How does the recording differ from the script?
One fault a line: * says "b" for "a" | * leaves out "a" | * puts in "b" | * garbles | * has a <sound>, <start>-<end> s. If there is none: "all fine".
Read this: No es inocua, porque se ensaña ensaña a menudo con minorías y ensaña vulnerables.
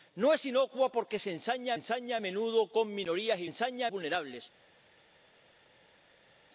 all fine